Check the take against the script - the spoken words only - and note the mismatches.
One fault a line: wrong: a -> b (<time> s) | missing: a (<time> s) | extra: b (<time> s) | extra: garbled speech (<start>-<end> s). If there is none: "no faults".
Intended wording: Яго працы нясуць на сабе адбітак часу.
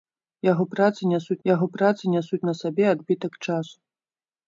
extra: яго працы нясуць (1.5 s)